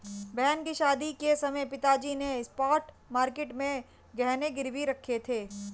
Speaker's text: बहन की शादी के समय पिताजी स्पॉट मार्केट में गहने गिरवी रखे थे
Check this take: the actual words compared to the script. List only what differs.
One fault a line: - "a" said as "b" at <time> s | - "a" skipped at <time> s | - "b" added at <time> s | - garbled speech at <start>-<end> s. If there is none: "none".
- "ने" added at 2.1 s